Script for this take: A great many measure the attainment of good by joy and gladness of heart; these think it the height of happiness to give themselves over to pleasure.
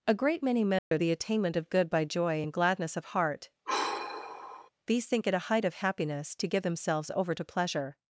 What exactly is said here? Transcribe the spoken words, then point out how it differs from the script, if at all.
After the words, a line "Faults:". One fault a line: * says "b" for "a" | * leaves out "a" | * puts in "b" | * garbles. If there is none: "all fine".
A great many measure the attainment of good by joy and gladness of heart; these think it a height of happiness to give themselves over to pleasure.
Faults:
* says "a" for "the"